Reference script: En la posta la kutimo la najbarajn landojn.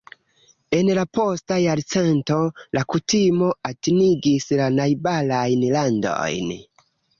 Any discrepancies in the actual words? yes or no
yes